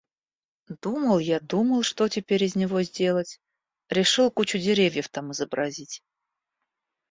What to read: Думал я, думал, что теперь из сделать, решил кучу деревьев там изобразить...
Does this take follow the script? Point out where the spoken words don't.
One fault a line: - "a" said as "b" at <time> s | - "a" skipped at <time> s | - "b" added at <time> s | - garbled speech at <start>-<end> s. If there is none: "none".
- "него" added at 2.5 s